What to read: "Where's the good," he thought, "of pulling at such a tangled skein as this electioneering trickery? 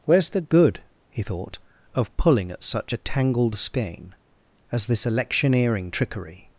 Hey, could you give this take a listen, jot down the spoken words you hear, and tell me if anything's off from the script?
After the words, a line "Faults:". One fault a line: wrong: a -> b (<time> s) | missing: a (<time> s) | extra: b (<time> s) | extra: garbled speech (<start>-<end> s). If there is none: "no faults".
"Where's the good," he thought, "of pulling at such a tangled skein as this electioneering trickery?
Faults:
no faults